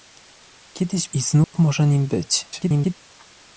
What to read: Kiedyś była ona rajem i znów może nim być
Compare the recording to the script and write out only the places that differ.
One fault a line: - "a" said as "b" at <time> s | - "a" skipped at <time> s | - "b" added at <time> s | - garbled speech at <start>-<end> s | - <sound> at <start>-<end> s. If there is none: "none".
- "była ona rajem" skipped at 1.1 s
- dropout at 1.4-1.5 s
- garbled speech at 2.5-2.9 s